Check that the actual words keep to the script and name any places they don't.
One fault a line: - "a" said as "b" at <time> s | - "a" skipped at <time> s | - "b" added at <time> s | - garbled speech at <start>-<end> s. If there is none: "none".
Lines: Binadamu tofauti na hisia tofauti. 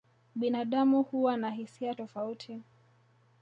- "tofauti" said as "huwa" at 1.0 s